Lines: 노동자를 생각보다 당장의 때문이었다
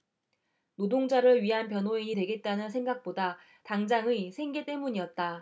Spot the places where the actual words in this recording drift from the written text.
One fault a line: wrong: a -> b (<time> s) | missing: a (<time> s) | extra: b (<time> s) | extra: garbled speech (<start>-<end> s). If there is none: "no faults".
extra: 위한 변호인이 되겠다는 (1.4 s)
extra: 생계 (4.3 s)